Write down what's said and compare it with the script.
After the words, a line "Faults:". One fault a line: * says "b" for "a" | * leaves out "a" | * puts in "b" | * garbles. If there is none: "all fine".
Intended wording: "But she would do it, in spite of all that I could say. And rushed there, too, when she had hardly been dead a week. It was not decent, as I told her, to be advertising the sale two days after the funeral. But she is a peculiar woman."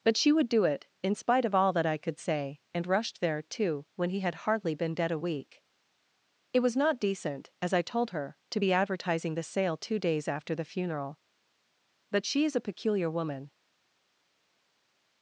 "But she would do it, in spite of all that I could say. And rushed there, too, when he had hardly been dead a week. It was not decent, as I told her, to be advertising the sale two days after the funeral. But she is a peculiar woman."
Faults:
* says "he" for "she"